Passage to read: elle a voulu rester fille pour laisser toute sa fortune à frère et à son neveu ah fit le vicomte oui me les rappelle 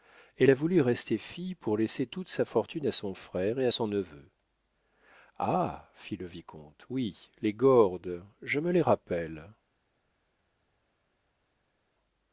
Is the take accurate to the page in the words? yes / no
no